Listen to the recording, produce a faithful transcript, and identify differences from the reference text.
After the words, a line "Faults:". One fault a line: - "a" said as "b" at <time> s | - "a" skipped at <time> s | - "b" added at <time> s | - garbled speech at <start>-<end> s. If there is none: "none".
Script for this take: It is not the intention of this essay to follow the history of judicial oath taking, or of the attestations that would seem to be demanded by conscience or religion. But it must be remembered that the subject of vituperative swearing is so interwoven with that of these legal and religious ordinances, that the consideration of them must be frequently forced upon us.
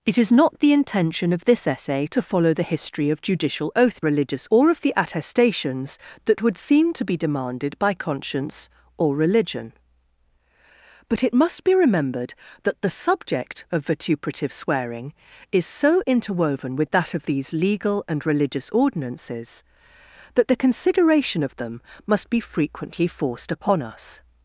It is not the intention of this essay to follow the history of judicial oath religious, or of the attestations that would seem to be demanded by conscience or religion. But it must be remembered that the subject of vituperative swearing is so interwoven with that of these legal and religious ordinances, that the consideration of them must be frequently forced upon us.
Faults:
- "taking" said as "religious" at 4.0 s